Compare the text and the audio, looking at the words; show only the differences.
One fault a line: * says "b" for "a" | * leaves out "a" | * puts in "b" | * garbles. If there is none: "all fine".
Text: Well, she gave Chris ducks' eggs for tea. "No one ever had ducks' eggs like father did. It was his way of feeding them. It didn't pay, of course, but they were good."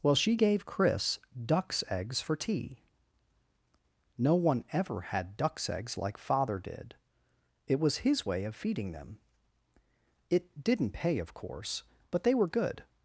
all fine